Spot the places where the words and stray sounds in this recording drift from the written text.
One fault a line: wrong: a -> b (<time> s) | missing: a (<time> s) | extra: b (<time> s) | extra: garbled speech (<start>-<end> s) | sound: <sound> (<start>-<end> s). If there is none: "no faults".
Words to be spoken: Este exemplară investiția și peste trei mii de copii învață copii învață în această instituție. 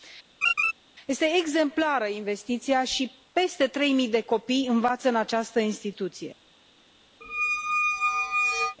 sound: laugh (0.4-0.7 s)
missing: copii învață (5.1 s)
sound: squeak (7.2-8.8 s)